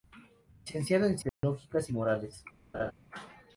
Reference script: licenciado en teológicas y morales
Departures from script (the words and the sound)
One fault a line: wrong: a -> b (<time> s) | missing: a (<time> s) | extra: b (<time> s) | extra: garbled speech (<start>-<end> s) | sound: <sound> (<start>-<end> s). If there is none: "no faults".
sound: dropout (1.3-1.4 s)
sound: laugh (2.7-2.9 s)